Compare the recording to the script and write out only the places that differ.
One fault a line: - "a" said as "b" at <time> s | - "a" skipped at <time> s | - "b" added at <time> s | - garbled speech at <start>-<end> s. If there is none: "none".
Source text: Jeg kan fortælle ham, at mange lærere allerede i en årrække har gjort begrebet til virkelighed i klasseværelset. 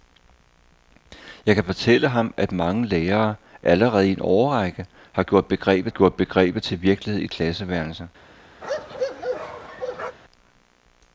- "gjort begrebet" added at 5.9 s